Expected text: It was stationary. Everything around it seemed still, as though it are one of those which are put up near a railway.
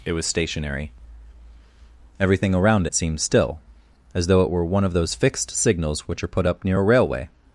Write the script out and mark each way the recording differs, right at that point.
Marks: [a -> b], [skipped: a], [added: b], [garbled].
It was stationary. Everything around it seemed still, as though it [are -> were] one of those [added: fixed signals] which are put up near a railway.